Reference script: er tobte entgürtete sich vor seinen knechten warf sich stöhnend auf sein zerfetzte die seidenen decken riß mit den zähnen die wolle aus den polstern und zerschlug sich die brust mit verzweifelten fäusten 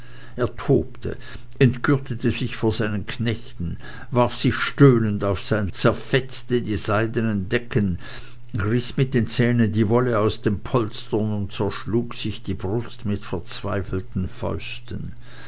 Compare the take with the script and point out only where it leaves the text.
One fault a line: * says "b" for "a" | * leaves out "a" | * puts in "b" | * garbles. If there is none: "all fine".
all fine